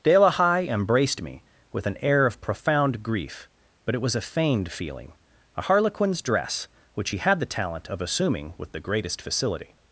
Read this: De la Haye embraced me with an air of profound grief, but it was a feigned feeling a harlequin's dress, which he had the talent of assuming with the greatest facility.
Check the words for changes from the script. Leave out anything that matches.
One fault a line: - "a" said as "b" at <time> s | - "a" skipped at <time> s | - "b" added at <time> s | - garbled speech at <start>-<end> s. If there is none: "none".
none